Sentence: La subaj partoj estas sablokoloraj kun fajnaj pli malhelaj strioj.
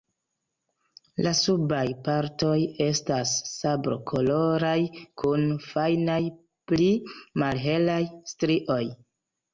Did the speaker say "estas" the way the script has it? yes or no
yes